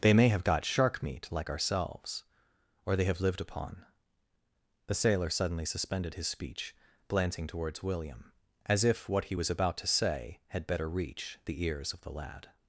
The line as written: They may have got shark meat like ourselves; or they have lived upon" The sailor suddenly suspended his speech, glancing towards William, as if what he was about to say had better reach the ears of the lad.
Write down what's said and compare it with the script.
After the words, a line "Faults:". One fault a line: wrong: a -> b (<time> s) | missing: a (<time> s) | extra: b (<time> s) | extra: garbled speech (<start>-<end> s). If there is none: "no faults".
They may have got shark meat like ourselves; or they have lived upon" The sailor suddenly suspended his speech, glancing towards William, as if what he was about to say had better reach the ears of the lad.
Faults:
no faults